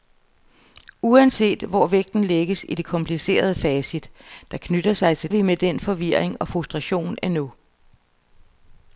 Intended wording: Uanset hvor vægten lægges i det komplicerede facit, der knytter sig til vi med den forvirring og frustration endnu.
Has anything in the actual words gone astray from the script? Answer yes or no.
no